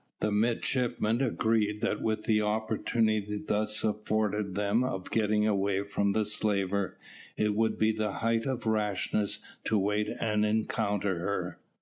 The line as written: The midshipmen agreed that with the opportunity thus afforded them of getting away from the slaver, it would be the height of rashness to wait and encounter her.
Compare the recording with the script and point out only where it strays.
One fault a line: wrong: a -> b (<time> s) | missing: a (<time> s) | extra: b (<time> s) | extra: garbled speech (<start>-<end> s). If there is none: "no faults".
no faults